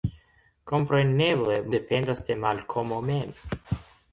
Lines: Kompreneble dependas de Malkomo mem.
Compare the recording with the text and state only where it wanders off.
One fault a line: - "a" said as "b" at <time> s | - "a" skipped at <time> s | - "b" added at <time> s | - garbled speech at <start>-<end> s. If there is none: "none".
none